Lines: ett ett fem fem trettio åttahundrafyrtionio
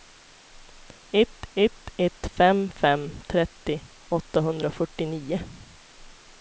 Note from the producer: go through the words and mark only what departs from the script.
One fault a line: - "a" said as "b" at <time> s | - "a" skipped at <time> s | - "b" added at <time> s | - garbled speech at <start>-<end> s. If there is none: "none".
- "ett" added at 2.0 s